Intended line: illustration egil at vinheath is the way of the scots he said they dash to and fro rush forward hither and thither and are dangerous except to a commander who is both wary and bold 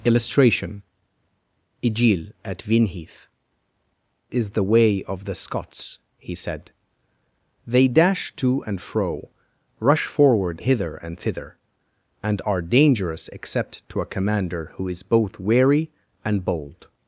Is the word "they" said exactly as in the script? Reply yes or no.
yes